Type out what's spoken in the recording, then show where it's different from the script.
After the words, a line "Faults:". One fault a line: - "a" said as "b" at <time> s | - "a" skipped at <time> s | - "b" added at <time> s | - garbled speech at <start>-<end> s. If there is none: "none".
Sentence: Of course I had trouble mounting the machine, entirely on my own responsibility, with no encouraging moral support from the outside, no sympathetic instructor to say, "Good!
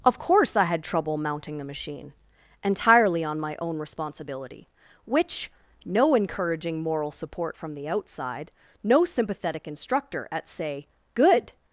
Of course I had trouble mounting the machine, entirely on my own responsibility, which no encouraging moral support from the outside, no sympathetic instructor at say, "Good!
Faults:
- "with" said as "which" at 5.0 s
- "to" said as "at" at 10.3 s